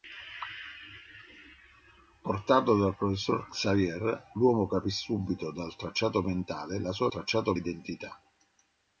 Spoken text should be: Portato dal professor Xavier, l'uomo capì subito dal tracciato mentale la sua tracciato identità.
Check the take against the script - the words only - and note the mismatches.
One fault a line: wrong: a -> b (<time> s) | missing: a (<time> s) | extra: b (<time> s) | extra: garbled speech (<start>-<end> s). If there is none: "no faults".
no faults